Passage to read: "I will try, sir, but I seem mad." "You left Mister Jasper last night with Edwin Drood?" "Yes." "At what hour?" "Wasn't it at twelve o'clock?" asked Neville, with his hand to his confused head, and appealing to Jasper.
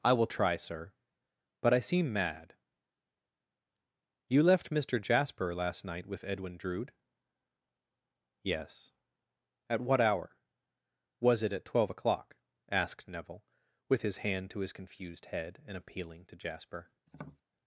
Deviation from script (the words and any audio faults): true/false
true